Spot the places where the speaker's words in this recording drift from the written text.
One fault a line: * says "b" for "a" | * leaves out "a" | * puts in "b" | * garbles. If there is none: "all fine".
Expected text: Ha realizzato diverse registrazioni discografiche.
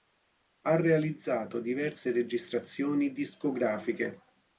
all fine